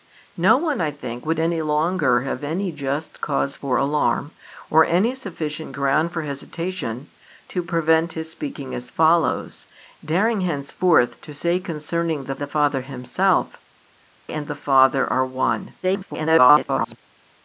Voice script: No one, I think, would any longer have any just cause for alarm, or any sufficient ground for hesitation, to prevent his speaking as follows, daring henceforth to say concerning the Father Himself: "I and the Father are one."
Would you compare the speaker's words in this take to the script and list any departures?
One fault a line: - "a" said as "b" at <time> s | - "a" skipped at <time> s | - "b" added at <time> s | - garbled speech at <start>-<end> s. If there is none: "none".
- "the" added at 12.3 s
- "I" skipped at 13.6 s
- garbled speech at 15.8-17.0 s